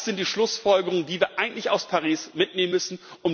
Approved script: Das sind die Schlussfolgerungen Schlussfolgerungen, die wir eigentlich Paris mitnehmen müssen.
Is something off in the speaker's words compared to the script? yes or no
yes